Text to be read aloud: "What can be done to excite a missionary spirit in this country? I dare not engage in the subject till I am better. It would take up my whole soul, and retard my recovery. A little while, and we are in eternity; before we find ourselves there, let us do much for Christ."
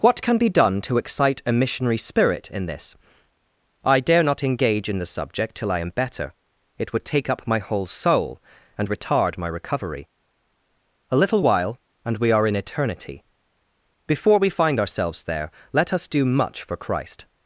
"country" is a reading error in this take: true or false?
true